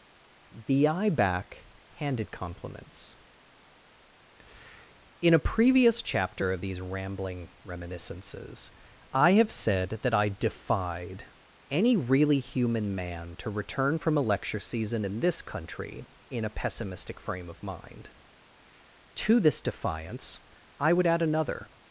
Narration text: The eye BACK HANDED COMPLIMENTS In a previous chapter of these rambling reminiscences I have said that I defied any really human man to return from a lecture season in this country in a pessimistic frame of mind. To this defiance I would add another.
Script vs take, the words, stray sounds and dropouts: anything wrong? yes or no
no